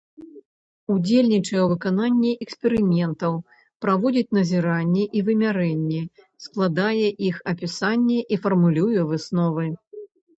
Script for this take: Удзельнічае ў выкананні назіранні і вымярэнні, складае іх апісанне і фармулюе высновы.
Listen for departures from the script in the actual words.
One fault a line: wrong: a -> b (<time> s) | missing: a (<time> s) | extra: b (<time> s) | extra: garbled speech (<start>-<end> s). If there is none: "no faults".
extra: эксперыментаў праводзіць (2.4 s)